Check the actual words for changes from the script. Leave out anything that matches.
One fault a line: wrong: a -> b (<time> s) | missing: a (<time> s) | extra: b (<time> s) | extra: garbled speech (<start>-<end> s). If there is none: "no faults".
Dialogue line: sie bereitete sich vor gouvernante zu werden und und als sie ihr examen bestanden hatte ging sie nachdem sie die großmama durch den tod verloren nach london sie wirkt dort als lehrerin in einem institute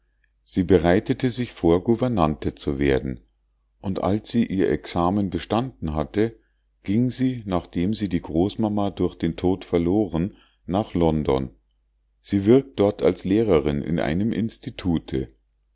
missing: und (4.0 s)